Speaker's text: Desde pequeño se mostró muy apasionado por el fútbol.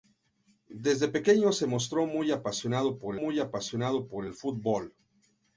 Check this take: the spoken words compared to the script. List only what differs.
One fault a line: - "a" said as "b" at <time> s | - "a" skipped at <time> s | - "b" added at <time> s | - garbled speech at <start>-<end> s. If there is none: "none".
- "muy apasionado por" added at 3.1 s